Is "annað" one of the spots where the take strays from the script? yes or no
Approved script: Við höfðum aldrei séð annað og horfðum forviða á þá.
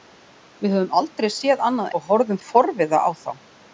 no